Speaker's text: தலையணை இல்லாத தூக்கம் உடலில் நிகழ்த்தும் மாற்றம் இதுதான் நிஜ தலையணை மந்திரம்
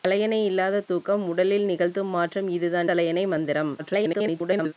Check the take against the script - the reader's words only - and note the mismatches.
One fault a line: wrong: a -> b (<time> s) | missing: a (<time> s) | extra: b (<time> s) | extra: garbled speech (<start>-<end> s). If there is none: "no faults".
missing: நிஜ (2.9 s)
extra: garbled speech (3.8-4.7 s)